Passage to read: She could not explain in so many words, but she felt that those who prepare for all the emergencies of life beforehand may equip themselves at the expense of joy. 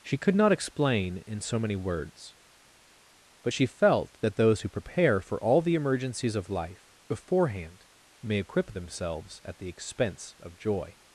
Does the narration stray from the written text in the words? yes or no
no